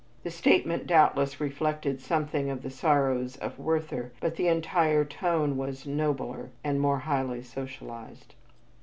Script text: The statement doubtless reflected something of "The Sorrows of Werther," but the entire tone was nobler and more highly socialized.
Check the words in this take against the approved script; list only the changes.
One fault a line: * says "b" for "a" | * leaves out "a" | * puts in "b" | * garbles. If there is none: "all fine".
all fine